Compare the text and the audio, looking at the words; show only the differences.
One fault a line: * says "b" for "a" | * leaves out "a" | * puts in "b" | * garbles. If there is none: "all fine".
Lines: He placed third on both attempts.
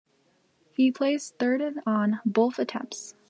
all fine